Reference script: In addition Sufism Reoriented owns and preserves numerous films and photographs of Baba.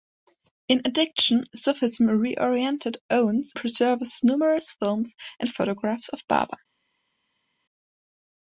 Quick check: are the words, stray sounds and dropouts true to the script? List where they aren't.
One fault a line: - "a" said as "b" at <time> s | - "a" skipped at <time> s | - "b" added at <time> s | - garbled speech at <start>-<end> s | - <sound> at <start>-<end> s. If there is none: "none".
- "and" skipped at 3.5 s